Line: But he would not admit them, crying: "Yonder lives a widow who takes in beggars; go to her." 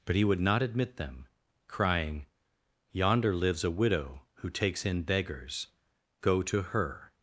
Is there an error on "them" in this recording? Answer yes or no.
no